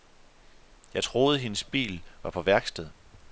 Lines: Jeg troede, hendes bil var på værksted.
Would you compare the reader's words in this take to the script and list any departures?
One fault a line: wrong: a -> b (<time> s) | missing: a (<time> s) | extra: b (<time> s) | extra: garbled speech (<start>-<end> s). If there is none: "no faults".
no faults